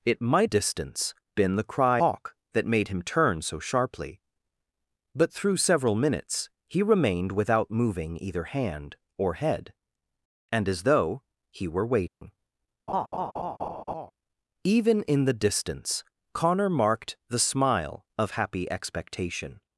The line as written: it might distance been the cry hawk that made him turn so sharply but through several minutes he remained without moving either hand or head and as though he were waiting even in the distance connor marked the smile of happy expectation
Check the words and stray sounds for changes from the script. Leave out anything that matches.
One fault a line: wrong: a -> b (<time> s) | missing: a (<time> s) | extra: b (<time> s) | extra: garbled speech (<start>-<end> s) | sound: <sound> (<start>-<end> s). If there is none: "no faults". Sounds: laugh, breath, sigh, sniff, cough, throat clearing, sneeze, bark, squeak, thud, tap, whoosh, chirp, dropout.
sound: dropout (12.1-12.2 s)
sound: laugh (12.9-14.1 s)